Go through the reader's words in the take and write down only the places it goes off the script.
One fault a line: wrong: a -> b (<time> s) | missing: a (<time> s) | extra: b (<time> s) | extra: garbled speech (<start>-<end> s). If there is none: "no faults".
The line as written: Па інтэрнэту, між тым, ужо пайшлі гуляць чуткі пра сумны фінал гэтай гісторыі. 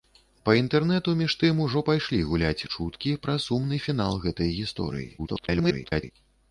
extra: garbled speech (5.2-6.1 s)